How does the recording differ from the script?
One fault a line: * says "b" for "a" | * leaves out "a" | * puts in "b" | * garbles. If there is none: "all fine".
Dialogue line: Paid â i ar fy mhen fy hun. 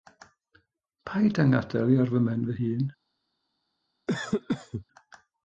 * puts in "ngadael"